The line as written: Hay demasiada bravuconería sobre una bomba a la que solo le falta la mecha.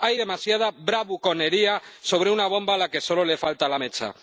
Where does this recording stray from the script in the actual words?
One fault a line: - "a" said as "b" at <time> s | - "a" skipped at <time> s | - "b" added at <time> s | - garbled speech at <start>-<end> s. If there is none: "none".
none